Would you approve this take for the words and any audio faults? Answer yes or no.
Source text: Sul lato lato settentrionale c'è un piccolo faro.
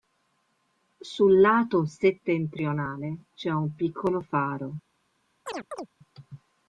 no